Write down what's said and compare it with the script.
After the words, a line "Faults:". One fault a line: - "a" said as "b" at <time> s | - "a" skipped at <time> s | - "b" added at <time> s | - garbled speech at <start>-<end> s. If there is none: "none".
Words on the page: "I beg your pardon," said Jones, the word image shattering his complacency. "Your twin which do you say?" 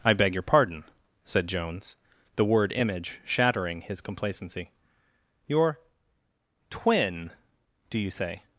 "I beg your pardon," said Jones, the word image shattering his complacency. "Your twin do you say?"
Faults:
- "which" skipped at 7.3 s